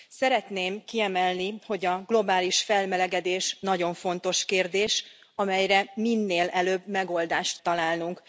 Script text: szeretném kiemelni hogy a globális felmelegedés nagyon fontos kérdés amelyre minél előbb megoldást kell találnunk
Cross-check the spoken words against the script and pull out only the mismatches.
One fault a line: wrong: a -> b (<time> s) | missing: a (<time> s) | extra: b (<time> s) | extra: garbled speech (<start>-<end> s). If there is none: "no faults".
missing: kell (7.6 s)